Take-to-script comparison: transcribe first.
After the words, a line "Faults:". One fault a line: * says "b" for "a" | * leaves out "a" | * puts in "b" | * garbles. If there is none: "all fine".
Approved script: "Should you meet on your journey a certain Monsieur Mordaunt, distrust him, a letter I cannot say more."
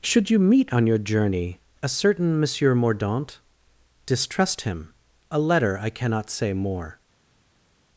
"Should you meet on your journey a certain Monsieur Mordaunt, distrust him, a letter I cannot say more."
Faults:
all fine